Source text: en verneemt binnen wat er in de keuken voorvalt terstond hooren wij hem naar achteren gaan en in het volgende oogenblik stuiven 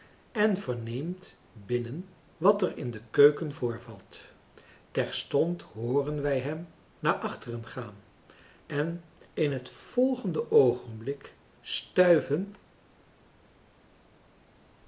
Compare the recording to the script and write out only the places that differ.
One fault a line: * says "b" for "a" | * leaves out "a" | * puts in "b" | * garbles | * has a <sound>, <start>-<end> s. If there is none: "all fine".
all fine